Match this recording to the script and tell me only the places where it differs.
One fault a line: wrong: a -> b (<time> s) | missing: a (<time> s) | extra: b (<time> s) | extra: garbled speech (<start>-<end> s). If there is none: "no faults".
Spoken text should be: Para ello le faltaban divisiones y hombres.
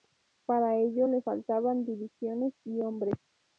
no faults